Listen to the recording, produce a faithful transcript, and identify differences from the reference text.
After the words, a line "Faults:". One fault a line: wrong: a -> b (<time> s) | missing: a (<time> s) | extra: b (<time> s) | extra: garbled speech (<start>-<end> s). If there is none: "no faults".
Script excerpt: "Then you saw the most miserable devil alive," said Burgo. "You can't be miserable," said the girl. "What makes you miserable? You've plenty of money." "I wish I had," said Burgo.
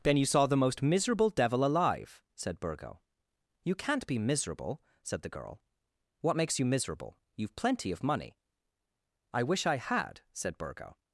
"Then you saw the most miserable devil alive," said Burgo. "You can't be miserable," said the girl. "What makes you miserable? You've plenty of money." "I wish I had," said Burgo.
Faults:
no faults